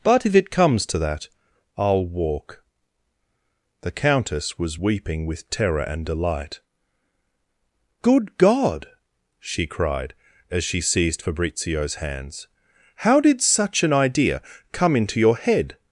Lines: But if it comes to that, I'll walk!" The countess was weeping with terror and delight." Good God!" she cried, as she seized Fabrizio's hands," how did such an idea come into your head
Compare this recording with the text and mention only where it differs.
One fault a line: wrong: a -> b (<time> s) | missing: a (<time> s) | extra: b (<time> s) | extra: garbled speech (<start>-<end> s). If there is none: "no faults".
no faults